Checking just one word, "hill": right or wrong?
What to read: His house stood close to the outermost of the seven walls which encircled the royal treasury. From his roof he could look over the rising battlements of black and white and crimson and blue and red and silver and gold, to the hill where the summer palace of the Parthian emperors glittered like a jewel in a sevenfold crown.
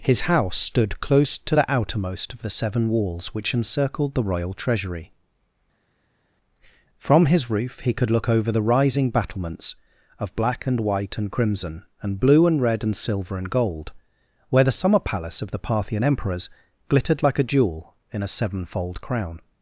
wrong